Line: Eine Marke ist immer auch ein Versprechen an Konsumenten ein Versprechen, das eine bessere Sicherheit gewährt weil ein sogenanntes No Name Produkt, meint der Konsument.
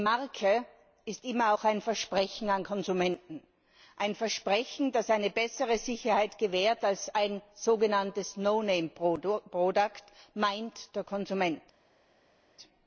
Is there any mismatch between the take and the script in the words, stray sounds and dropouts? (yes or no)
yes